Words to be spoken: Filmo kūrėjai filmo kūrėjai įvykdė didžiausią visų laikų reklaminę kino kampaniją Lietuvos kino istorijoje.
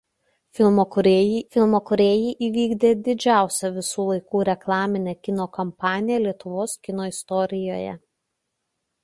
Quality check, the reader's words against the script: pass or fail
pass